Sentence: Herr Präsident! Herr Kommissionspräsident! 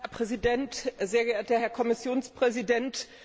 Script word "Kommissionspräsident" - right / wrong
right